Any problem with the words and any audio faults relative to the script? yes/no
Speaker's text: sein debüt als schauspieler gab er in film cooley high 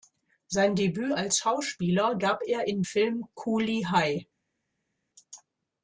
no